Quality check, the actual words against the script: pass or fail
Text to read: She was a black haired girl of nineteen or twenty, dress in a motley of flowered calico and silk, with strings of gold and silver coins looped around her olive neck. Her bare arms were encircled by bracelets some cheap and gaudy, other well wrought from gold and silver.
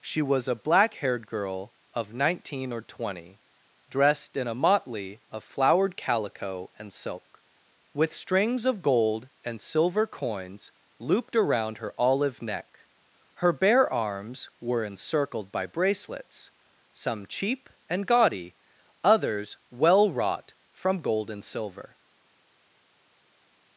fail